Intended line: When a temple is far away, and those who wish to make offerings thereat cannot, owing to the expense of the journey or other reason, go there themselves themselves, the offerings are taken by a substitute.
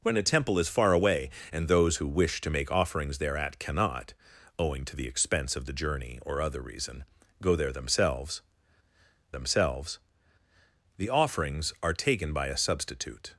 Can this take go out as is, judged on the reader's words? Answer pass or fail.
pass